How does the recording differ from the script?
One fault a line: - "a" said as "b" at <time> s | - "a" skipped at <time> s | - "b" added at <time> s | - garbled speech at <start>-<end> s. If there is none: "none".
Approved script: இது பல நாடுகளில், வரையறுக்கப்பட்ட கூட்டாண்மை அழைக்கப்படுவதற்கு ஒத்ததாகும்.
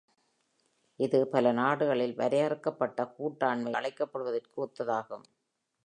none